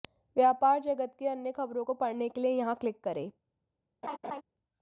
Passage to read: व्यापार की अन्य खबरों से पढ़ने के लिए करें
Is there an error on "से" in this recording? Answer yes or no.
yes